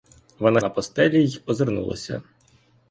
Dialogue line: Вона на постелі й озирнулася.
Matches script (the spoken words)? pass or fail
pass